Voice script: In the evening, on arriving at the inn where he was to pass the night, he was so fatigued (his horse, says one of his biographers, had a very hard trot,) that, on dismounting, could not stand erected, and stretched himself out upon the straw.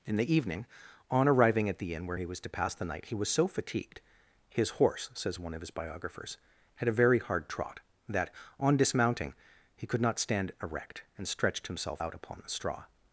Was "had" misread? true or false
false